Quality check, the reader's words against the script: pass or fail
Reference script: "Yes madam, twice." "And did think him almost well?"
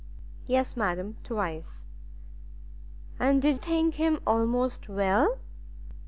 pass